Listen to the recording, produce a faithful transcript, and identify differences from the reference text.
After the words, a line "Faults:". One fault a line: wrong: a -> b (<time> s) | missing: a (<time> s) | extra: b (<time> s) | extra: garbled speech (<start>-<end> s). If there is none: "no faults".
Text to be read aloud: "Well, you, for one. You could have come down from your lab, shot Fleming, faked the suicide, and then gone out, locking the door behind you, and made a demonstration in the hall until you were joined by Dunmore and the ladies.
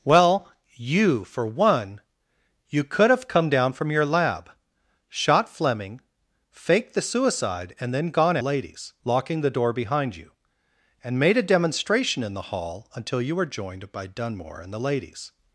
"Well, you, for one. You could have come down from your lab, shot Fleming, faked the suicide, and then gone ladies, locking the door behind you, and made a demonstration in the hall until you were joined by Dunmore and the ladies.
Faults:
wrong: out -> ladies (8.4 s)